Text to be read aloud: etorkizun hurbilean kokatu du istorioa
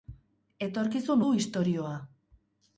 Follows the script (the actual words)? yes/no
no